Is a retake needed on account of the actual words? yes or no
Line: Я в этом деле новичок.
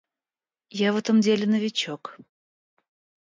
no